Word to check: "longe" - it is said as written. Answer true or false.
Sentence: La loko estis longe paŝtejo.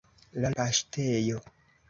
false